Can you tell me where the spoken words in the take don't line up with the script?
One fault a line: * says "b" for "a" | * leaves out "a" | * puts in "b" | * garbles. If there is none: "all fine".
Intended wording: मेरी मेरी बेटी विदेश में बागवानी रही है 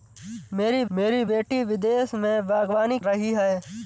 all fine